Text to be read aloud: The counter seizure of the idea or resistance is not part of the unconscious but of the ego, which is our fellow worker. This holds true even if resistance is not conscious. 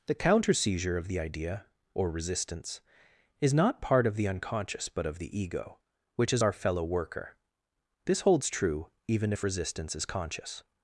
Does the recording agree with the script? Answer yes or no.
no